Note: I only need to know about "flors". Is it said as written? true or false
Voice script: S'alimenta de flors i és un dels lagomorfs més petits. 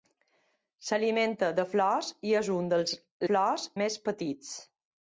true